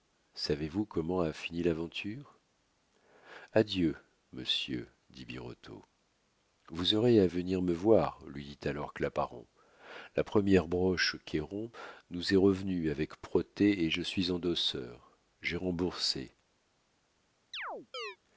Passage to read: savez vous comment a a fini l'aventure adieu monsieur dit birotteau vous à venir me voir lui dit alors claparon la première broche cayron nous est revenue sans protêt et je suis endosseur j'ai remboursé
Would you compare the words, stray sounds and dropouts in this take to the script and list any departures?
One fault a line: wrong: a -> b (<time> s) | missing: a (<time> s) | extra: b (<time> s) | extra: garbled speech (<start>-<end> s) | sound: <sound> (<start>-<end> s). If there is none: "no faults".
missing: a (1.3 s)
extra: aurez (7.0 s)
wrong: sans -> avec (12.9 s)
sound: chirp (17.5-18.2 s)